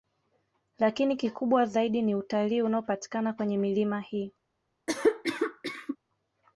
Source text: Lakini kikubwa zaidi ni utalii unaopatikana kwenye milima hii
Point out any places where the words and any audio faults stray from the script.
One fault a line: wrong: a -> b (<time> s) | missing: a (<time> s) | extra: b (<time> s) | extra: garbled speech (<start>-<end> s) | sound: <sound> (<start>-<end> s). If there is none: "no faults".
sound: cough (4.9-6.0 s)